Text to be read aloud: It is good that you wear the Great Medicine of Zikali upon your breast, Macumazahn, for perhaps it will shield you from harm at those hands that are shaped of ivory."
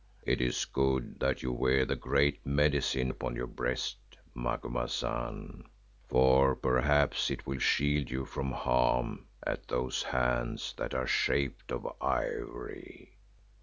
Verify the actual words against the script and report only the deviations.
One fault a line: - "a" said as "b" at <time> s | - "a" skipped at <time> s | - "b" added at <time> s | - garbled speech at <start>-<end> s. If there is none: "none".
- "of Zikali" skipped at 3.1 s